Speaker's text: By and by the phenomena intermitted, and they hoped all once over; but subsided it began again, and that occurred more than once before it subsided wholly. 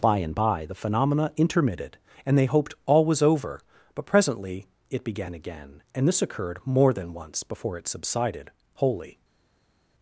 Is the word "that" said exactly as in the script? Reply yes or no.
no